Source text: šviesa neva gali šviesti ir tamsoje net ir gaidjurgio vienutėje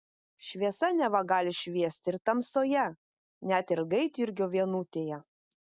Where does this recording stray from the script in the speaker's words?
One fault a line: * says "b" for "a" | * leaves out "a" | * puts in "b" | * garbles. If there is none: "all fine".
all fine